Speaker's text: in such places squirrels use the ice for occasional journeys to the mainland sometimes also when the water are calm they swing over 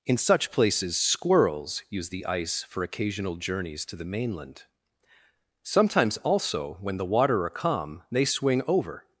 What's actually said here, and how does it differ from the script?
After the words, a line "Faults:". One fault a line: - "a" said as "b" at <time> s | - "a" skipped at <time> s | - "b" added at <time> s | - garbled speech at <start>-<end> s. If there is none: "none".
in such places squirrels use the ice for occasional journeys to the mainland sometimes also when the water are calm they swing over
Faults:
none